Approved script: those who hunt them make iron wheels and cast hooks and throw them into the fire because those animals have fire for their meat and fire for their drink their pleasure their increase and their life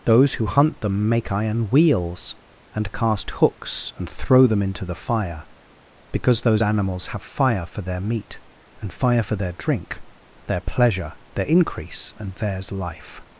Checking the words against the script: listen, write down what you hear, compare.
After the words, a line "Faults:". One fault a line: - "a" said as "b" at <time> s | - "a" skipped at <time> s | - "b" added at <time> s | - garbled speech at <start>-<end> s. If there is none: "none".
those who hunt them make iron wheels and cast hooks and throw them into the fire because those animals have fire for their meat and fire for their drink their pleasure their increase and theirs life
Faults:
- "their" said as "theirs" at 12.3 s